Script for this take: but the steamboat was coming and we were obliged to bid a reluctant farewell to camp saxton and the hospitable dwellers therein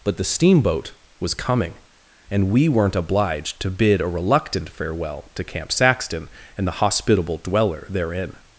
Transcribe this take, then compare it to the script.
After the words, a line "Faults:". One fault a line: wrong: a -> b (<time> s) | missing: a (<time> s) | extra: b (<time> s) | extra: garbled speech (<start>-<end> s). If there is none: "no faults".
but the steamboat was coming and we weren't obliged to bid a reluctant farewell to camp saxton and the hospitable dweller therein
Faults:
wrong: were -> weren't (2.7 s)
wrong: dwellers -> dweller (7.4 s)